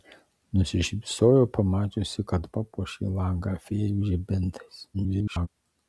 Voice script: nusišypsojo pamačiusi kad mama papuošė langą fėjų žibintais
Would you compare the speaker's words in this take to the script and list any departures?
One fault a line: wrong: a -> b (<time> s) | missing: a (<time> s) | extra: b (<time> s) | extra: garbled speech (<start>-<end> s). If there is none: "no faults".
missing: mama (2.5 s)
extra: garbled speech (4.9-5.5 s)